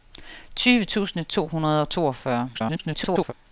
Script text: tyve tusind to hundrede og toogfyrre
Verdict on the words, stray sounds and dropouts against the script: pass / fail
fail